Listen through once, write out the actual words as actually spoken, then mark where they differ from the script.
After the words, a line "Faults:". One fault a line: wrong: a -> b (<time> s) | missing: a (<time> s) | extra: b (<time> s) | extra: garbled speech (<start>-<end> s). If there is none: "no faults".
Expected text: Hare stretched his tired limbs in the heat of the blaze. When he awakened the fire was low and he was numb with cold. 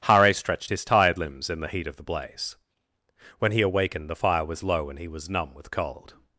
Hare stretched his tired limbs in the heat of the blaze. When he awakened the fire was low and he was numb with cold.
Faults:
no faults